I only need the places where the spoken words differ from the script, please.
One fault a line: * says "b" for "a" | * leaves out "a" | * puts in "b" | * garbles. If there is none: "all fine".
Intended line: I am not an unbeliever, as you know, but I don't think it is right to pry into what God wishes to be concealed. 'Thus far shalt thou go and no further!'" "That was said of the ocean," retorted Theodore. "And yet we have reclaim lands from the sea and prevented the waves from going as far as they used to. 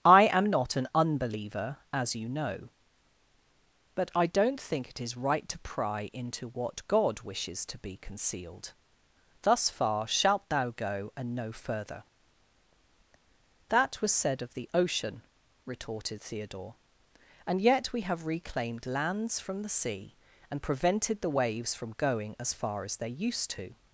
* says "reclaimed" for "reclaim"